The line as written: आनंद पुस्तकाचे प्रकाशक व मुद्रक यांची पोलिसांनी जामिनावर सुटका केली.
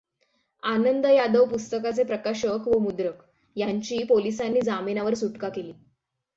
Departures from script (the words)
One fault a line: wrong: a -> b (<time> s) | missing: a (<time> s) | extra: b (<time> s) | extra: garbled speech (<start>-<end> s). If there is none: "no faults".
extra: यादव (1.1 s)